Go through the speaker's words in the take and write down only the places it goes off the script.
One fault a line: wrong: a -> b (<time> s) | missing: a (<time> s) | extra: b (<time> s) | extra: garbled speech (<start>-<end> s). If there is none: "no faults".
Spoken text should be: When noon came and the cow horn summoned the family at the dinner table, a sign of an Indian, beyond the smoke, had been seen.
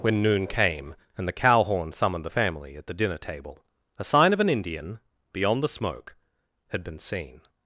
no faults